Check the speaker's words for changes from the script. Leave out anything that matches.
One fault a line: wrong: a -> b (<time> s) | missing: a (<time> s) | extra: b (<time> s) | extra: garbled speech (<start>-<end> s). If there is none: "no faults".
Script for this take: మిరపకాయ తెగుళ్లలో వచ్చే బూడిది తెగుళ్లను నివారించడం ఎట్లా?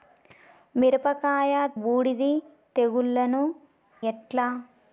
missing: తెగుళ్లలో వచ్చే (1.5 s)
missing: నివారించడం (3.4 s)